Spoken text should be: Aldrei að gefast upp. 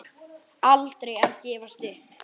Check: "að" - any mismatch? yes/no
no